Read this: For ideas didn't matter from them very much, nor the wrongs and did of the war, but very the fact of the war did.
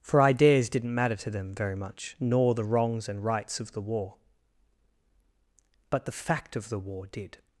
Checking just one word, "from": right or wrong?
wrong